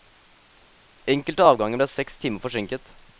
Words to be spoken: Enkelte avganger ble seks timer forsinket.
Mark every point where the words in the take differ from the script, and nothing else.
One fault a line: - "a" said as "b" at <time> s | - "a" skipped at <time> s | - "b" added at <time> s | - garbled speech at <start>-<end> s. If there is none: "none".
none